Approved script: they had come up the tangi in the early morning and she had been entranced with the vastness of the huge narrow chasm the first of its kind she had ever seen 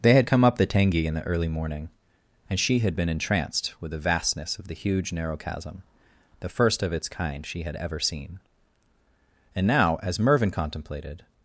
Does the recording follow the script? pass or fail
fail